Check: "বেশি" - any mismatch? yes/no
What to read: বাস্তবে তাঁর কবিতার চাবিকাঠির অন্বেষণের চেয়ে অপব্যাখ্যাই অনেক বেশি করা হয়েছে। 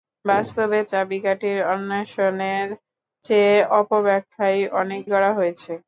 yes